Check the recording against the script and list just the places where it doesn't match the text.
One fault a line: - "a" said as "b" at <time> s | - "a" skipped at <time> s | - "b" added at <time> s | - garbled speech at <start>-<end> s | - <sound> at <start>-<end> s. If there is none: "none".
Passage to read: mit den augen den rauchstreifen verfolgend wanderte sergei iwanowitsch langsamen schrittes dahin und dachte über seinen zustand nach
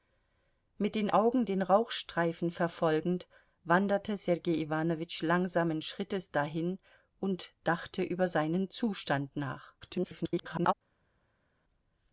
- garbled speech at 9.8-10.7 s